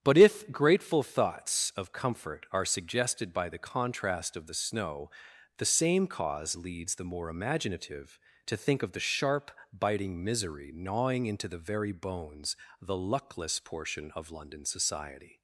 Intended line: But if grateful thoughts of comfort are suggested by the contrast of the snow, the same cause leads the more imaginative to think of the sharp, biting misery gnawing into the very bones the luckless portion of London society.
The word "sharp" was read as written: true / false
true